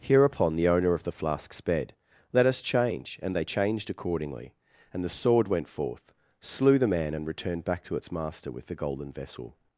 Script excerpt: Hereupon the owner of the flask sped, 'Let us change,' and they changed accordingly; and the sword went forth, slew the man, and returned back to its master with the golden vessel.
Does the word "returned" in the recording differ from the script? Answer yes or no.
no